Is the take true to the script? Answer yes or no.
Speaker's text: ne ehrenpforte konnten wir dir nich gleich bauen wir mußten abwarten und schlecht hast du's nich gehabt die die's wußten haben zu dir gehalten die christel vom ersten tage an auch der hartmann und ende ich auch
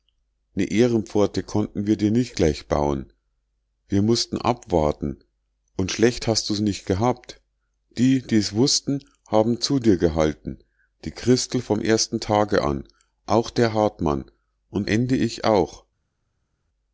yes